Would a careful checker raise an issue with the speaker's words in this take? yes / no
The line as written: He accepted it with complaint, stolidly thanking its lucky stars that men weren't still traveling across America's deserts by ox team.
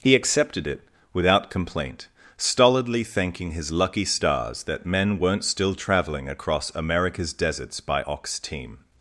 yes